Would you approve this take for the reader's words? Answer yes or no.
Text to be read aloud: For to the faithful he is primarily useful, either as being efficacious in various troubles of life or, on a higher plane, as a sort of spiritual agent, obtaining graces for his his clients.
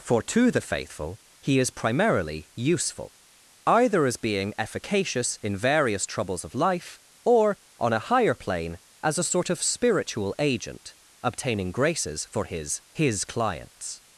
yes